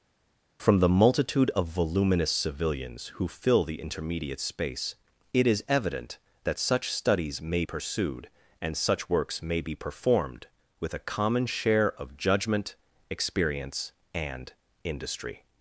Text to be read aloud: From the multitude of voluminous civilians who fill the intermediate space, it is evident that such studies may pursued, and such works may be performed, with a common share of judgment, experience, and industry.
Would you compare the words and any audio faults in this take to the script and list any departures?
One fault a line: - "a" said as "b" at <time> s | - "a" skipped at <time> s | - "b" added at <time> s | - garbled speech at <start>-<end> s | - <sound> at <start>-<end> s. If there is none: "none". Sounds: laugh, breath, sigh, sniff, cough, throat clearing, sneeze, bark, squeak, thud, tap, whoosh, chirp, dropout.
none